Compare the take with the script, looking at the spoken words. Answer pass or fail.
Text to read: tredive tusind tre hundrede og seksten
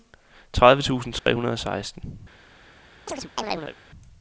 pass